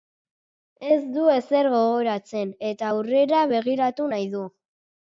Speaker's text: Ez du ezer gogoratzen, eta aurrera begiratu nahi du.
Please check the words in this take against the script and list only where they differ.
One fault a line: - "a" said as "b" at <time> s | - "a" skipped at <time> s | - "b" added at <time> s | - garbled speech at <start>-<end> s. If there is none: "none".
none